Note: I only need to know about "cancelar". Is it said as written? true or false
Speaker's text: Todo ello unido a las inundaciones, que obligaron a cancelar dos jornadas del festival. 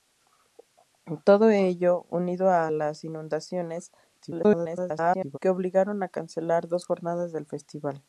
true